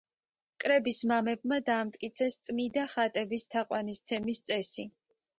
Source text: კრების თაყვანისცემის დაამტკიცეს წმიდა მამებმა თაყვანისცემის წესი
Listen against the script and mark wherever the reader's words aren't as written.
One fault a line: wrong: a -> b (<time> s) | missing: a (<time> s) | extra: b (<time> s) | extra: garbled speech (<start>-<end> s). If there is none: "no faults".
wrong: თაყვანისცემის -> მამებმა (1.1 s)
wrong: მამებმა -> ხატების (2.9 s)